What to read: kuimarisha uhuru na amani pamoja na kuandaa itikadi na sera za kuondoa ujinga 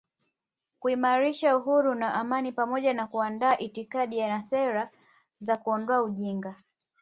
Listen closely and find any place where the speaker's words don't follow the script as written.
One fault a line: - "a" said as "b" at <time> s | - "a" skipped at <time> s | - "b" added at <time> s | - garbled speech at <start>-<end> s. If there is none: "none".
none